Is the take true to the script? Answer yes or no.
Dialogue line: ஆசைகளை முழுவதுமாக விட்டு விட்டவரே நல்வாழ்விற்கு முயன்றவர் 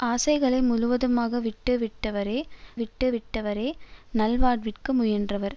no